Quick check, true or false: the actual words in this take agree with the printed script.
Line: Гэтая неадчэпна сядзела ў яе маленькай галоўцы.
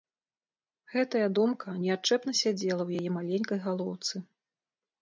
false